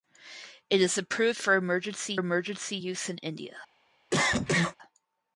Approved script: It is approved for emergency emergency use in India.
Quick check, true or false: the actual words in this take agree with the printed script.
true